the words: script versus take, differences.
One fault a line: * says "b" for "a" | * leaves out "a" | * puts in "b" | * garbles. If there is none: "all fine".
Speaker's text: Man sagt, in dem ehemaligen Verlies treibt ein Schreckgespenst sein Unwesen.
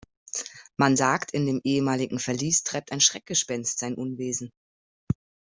all fine